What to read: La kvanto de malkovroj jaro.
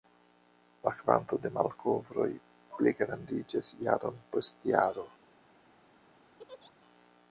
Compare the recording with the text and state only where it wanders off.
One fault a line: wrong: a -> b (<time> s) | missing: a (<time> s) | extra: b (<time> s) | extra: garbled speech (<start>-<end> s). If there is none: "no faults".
extra: pligrandiĝas jaron post (2.8 s)